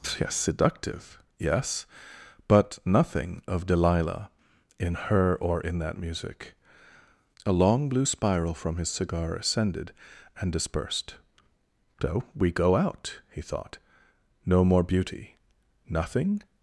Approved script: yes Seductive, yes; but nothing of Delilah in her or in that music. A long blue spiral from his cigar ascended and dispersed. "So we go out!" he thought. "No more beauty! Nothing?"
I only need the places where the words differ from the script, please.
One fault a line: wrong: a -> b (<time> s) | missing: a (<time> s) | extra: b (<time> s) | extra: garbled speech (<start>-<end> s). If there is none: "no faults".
no faults